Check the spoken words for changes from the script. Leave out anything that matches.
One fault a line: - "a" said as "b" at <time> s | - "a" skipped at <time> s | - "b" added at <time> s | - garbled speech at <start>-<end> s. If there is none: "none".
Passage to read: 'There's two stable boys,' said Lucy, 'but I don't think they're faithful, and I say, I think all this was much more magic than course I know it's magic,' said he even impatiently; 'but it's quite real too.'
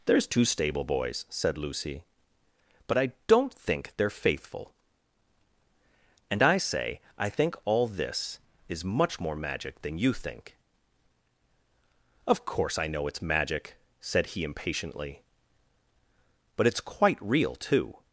- "was" said as "is" at 8.7 s
- "you think Of" added at 10.0 s
- "even" skipped at 14.4 s